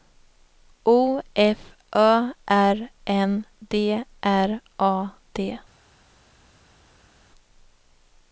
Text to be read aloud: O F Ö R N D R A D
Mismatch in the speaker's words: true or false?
false